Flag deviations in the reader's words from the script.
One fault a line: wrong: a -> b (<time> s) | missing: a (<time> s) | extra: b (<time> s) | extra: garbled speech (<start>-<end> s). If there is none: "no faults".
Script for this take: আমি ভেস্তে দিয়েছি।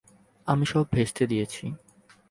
extra: সব (0.6 s)